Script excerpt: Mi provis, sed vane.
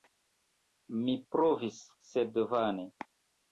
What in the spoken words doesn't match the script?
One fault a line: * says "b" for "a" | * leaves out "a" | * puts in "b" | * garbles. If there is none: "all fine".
all fine